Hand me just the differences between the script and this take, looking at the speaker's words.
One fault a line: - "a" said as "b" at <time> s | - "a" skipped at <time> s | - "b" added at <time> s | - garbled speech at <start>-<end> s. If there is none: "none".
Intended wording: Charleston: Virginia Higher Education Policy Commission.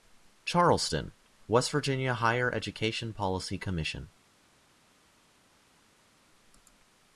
- "West" added at 1.5 s